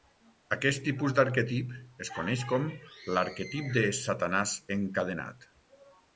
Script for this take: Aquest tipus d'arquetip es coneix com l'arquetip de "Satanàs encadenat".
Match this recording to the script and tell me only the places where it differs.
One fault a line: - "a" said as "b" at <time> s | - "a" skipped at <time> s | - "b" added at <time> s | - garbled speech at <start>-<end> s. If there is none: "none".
none